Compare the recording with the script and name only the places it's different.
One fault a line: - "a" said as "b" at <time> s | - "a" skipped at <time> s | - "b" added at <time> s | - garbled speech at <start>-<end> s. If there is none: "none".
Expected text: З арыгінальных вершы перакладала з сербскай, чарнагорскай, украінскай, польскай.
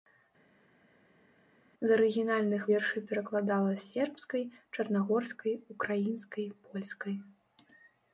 none